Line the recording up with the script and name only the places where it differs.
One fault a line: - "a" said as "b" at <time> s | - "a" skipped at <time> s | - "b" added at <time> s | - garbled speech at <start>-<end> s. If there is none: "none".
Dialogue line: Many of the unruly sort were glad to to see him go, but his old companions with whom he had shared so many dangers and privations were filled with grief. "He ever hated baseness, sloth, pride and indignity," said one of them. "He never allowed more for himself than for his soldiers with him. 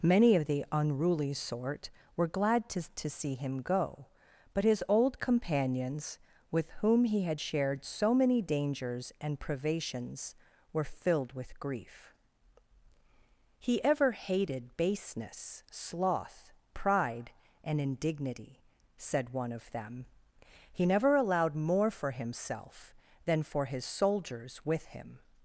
none